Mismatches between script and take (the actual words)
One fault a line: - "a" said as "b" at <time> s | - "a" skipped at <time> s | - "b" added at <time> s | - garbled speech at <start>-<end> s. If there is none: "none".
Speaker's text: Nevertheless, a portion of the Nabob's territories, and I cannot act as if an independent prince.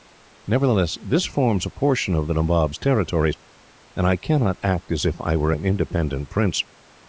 - "this forms" added at 1.1 s
- "I were" added at 5.2 s